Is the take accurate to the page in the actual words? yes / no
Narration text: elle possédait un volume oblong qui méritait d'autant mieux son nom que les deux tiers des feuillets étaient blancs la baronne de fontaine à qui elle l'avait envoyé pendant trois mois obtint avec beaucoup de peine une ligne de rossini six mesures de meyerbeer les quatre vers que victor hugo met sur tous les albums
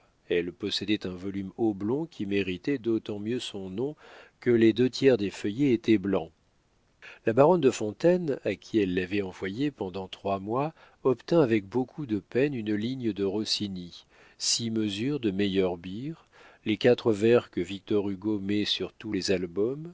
yes